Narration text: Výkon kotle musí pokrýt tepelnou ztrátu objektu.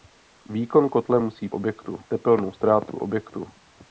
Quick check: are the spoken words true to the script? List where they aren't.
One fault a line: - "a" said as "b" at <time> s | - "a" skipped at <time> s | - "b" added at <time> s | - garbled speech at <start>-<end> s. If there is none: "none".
- "pokrýt" said as "objektu" at 1.5 s